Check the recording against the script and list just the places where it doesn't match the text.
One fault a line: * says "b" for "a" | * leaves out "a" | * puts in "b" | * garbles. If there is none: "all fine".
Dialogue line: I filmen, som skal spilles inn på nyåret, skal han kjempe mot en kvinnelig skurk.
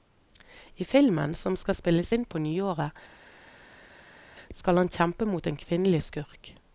all fine